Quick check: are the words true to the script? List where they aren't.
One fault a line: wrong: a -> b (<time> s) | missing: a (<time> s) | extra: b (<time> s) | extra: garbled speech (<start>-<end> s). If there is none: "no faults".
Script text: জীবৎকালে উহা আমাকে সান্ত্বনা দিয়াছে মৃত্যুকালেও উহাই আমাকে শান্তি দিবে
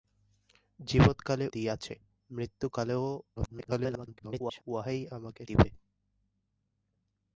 missing: উহা আমাকে সান্ত্বনা (1.4 s)
extra: garbled speech (3.4-4.6 s)
missing: শান্তি (5.4 s)